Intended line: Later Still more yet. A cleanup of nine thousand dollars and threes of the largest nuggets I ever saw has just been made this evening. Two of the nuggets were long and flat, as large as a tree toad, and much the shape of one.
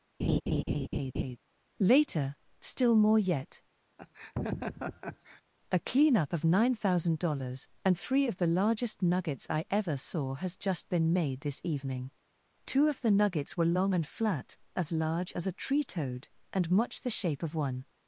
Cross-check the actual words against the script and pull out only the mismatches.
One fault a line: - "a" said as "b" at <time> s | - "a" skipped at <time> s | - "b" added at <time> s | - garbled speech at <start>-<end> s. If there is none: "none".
- "threes" said as "three" at 8.0 s